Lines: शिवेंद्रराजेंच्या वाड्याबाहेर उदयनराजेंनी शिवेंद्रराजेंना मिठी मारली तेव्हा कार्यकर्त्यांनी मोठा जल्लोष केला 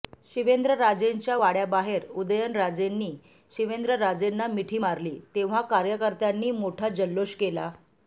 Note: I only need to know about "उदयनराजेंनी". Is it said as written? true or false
true